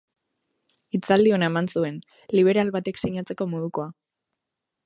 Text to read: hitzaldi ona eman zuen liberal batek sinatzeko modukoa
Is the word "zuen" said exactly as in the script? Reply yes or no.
yes